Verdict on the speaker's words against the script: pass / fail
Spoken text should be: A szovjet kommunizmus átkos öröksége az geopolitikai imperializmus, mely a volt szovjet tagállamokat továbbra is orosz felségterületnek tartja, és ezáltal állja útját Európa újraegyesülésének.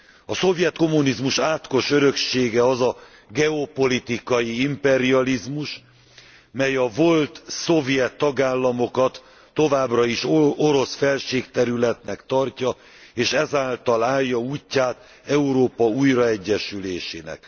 fail